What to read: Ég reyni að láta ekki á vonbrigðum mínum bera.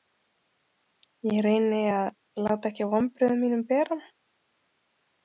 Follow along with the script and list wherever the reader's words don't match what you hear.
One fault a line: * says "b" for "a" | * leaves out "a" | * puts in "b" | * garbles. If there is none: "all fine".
all fine